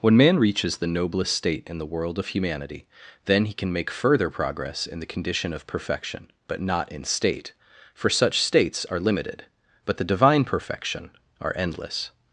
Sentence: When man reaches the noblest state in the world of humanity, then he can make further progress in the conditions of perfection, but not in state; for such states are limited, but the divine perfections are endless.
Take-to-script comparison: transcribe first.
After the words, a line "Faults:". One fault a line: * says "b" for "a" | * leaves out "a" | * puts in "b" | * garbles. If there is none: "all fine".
When man reaches the noblest state in the world of humanity, then he can make further progress in the condition of perfection, but not in state; for such states are limited, but the divine perfection are endless.
Faults:
* says "condition" for "conditions"
* says "perfection" for "perfections"